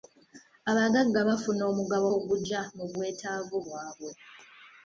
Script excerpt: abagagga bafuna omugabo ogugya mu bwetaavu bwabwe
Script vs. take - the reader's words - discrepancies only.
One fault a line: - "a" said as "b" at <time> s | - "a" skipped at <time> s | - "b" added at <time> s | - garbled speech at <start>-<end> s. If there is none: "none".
none